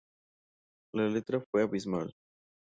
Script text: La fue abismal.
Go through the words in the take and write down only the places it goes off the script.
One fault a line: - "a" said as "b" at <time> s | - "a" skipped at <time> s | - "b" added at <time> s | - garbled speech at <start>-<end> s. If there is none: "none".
- "letra" added at 1.1 s